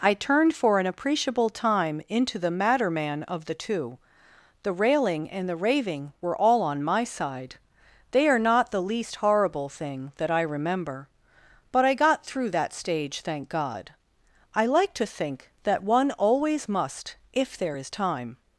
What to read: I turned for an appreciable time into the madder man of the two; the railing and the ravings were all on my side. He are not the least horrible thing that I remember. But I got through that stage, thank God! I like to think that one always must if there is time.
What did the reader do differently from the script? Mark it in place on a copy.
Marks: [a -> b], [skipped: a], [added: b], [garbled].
I turned for an appreciable time into the madder man of the two; the railing and the [ravings -> raving] were all on my side. [He -> They] are not the least horrible thing that I remember. But I got through that stage, thank God! I like to think that one always must if there is time.